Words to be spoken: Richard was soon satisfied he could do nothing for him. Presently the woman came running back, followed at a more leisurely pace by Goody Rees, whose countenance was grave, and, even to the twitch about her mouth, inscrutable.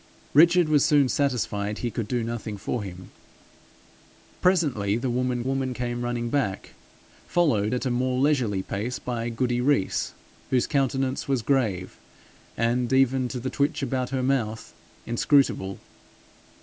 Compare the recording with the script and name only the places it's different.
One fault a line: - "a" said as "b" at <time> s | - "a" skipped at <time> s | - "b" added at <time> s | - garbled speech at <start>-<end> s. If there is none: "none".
- "woman" added at 5.4 s